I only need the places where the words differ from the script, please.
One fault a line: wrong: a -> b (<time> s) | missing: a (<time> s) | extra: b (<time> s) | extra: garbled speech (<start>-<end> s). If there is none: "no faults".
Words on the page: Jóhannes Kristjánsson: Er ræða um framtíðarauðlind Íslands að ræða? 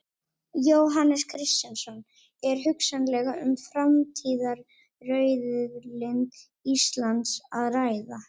wrong: ræða -> hugsanlega (2.7 s)